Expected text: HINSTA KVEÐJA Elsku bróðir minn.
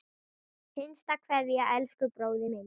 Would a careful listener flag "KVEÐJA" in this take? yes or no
no